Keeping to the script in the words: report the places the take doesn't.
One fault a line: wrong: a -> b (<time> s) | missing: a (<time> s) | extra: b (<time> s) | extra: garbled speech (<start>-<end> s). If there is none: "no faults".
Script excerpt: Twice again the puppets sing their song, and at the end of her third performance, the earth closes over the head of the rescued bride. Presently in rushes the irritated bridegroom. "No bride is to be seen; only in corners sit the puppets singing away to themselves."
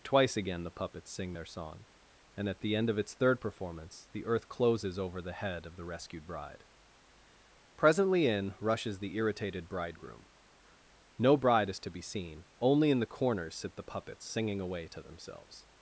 wrong: her -> its (3.0 s)
extra: the (13.0 s)